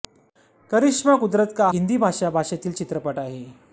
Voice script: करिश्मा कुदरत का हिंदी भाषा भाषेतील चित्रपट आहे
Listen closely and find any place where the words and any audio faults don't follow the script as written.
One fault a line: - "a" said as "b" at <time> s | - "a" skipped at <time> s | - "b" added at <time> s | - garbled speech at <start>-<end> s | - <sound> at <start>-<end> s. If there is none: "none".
none